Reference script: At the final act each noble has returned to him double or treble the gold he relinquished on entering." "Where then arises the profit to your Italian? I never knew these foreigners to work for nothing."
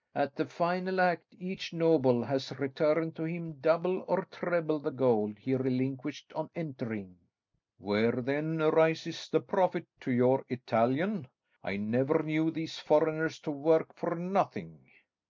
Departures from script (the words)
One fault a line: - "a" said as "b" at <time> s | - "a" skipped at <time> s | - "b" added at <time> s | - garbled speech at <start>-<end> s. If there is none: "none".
none